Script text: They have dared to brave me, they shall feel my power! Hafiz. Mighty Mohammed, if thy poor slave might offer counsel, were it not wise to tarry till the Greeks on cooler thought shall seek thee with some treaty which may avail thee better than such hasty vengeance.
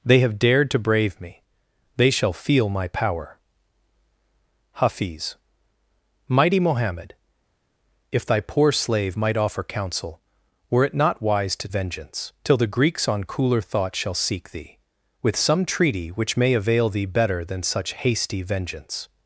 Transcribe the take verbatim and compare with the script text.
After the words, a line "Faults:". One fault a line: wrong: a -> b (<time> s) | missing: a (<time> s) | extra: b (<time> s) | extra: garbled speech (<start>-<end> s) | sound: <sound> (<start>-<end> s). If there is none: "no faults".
They have dared to brave me, they shall feel my power! Hafiz. Mighty Mohammed, if thy poor slave might offer counsel, were it not wise to vengeance till the Greeks on cooler thought shall seek thee with some treaty which may avail thee better than such hasty vengeance.
Faults:
wrong: tarry -> vengeance (11.7 s)